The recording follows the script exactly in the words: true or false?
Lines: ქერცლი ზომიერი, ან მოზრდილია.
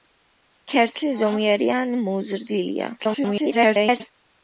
false